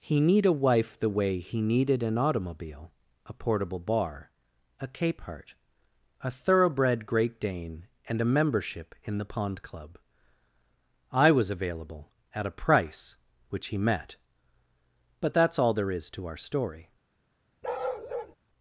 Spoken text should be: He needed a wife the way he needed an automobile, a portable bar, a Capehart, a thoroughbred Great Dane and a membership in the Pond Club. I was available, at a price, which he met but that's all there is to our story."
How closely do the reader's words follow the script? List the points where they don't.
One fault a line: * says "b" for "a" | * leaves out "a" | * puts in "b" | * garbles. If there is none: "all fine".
* says "need" for "needed"